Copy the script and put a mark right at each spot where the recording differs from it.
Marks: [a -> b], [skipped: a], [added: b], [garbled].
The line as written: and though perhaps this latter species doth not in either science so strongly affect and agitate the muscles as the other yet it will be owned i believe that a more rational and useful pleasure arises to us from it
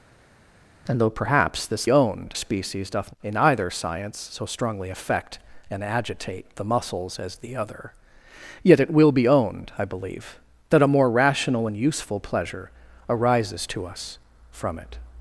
and though perhaps this [latter -> owned] species doth [skipped: not] in either science so strongly affect and agitate the muscles as the other yet it will be owned i believe that a more rational and useful pleasure arises to us from it